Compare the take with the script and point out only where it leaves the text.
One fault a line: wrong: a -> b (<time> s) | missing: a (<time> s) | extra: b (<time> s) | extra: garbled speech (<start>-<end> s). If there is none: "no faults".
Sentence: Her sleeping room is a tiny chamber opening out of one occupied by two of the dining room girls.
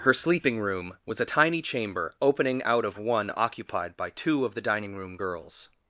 wrong: is -> was (1.1 s)